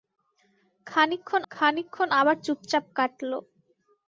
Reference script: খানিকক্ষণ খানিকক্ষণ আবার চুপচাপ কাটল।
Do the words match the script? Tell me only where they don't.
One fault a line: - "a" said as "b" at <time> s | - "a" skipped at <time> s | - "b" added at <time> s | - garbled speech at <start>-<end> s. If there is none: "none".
none